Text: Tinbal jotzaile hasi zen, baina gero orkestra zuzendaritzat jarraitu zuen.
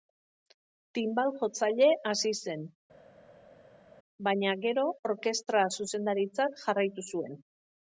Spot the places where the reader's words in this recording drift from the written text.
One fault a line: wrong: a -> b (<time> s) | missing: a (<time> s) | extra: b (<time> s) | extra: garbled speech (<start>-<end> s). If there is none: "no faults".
no faults